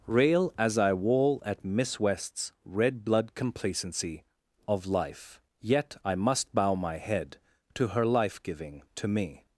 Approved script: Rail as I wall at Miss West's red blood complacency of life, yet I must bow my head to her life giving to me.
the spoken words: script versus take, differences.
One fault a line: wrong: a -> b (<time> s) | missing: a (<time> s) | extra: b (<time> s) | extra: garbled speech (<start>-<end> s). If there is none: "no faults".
no faults